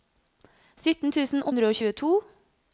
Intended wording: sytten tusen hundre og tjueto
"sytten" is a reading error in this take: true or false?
false